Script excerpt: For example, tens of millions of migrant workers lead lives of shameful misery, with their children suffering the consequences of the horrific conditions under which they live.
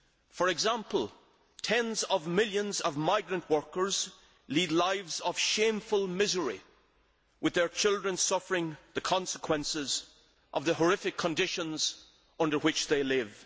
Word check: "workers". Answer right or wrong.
right